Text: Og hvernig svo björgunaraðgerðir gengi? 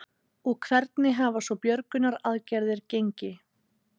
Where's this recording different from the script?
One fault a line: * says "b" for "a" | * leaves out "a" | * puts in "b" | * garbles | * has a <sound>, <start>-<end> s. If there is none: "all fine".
* puts in "hafa"